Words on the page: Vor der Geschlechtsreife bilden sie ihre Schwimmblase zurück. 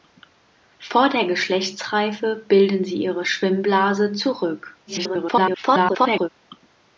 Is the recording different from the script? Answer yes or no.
yes